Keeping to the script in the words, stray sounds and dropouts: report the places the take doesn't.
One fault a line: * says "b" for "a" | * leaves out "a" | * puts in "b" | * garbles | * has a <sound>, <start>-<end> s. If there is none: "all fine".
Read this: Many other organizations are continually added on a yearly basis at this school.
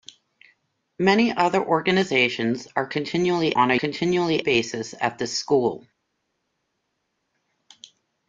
* leaves out "added"
* says "continually" for "yearly"